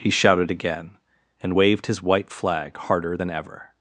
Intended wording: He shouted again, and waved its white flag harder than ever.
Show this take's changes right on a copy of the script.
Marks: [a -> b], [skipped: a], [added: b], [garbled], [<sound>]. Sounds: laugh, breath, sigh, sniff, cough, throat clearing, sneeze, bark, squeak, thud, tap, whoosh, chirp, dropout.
He shouted again, and waved [its -> his] white flag harder than ever.